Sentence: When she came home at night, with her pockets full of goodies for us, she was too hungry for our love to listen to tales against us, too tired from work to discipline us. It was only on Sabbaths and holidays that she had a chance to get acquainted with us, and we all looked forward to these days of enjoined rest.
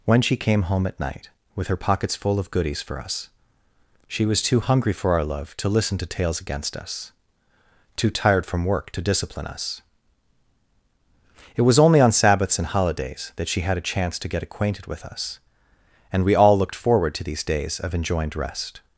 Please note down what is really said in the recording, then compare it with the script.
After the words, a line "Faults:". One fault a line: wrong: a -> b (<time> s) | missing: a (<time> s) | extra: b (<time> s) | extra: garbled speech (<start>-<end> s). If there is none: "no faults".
When she came home at night, with her pockets full of goodies for us, she was too hungry for our love to listen to tales against us, too tired from work to discipline us. It was only on Sabbaths and holidays that she had a chance to get acquainted with us, and we all looked forward to these days of enjoined rest.
Faults:
no faults